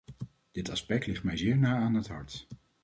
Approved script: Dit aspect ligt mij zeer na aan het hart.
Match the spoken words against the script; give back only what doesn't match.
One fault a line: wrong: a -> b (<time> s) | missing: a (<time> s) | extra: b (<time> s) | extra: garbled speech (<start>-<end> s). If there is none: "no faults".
no faults